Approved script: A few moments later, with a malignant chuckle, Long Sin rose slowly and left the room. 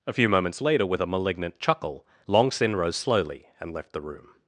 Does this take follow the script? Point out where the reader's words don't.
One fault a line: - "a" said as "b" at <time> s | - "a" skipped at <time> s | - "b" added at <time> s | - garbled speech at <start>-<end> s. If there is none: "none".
none